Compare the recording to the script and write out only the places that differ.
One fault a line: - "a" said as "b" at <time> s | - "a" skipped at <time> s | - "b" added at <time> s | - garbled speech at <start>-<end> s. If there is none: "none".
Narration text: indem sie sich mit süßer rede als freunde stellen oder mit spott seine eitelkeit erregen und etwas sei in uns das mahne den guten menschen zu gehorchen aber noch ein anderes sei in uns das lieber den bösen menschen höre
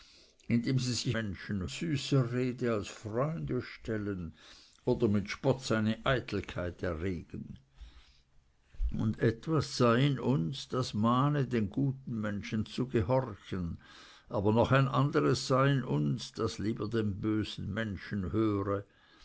- "mit" said as "menschen" at 1.1 s